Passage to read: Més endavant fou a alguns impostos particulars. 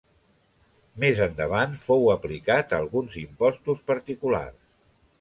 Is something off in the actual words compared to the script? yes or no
yes